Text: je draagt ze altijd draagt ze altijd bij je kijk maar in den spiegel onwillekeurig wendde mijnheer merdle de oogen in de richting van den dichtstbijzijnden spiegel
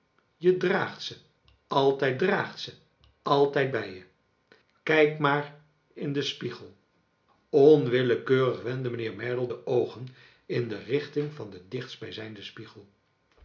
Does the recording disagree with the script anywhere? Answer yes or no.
no